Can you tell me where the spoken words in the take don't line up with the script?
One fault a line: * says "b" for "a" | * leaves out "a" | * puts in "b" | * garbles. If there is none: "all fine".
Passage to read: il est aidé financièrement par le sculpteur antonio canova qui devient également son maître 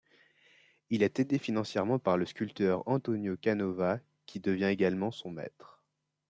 all fine